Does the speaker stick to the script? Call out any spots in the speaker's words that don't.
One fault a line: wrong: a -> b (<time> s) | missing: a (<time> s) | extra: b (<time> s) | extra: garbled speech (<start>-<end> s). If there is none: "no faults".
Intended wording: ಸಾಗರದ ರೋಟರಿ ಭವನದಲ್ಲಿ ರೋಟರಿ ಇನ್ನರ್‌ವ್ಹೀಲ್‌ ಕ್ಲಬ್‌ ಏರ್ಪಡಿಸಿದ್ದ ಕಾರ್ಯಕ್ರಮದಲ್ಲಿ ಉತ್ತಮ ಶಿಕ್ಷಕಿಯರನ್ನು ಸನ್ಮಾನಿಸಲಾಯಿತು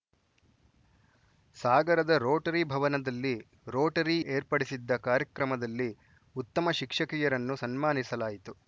missing: ಇನ್ನರ್‌ವ್ಹೀಲ್ ಕ್ಲಬ್ (4.2 s)